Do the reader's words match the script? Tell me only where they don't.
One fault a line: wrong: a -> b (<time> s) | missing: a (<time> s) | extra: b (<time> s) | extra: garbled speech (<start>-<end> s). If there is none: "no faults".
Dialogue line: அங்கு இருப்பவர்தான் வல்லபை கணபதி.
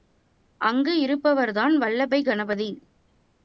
no faults